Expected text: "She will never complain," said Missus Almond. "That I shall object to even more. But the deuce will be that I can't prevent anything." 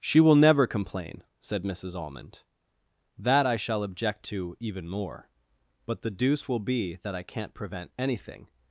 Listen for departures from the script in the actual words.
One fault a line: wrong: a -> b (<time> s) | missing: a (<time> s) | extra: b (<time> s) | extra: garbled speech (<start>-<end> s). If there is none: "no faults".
no faults